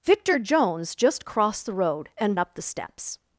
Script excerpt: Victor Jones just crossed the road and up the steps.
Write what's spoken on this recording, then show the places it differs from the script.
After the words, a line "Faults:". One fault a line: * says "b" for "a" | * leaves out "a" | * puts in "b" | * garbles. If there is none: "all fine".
Victor Jones just crossed the road and up the steps.
Faults:
all fine